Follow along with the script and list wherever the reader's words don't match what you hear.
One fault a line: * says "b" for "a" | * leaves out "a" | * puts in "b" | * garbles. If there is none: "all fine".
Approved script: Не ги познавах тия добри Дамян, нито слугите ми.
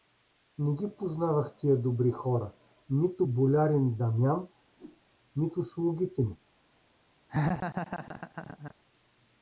* puts in "хора нито болярин"